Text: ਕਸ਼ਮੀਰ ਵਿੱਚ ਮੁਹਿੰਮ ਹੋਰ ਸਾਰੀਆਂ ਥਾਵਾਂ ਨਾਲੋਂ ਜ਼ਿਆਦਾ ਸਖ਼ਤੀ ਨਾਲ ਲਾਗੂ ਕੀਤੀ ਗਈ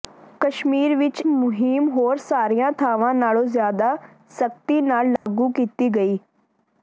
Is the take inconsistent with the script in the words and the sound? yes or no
yes